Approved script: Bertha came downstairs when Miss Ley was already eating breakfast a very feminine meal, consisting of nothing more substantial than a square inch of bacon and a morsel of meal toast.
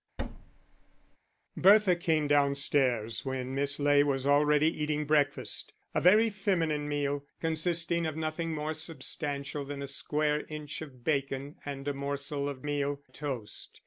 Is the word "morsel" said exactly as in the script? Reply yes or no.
yes